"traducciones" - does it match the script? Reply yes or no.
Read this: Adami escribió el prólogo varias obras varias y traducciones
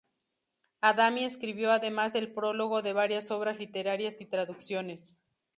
yes